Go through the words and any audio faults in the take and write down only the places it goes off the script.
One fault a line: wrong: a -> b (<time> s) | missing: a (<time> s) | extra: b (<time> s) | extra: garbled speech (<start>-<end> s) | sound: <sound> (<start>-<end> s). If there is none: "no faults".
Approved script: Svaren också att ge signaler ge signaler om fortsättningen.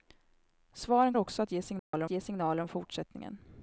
sound: dropout (1.8-1.9 s)